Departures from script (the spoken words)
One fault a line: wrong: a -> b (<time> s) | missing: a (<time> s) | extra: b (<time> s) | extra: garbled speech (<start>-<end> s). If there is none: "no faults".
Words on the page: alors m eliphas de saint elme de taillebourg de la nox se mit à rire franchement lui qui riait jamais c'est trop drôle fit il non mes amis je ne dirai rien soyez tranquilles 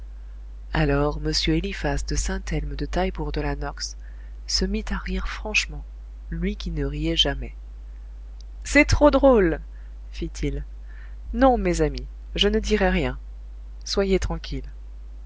extra: ne (6.7 s)